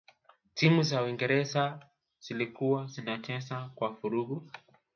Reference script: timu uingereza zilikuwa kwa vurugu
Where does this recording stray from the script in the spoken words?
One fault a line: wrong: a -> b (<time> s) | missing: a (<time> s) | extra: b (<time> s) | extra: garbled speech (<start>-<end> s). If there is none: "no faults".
extra: za (0.8 s)
extra: zinacheza (2.9 s)